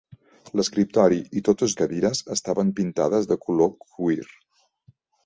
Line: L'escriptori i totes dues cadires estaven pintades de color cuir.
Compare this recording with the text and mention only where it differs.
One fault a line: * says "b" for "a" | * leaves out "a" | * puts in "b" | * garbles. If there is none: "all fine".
* leaves out "dues"